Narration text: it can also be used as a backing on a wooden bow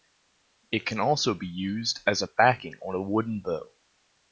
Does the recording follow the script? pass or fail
pass